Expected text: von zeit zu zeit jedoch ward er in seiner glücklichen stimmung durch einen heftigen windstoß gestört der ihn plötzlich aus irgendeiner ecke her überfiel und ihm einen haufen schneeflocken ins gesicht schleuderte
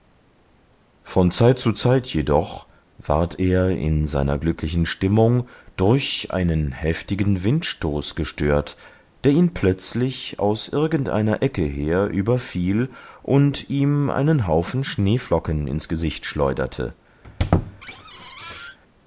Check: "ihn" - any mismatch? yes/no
no